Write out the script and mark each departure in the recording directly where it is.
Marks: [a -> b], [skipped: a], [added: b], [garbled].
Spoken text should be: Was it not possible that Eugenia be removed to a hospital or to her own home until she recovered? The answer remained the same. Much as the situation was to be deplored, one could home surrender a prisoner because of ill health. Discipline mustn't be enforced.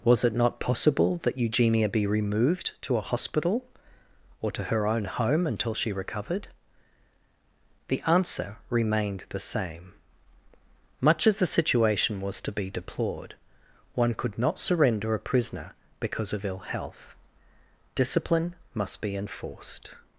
Was it not possible that Eugenia be removed to a hospital or to her own home until she recovered? The answer remained the same. Much as the situation was to be deplored, one could [home -> not] surrender a prisoner because of ill health. Discipline [mustn't -> must] be enforced.